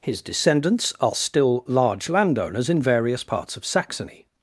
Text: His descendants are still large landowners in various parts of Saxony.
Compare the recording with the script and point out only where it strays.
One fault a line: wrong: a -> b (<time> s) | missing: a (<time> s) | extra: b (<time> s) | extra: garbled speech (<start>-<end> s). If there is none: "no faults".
no faults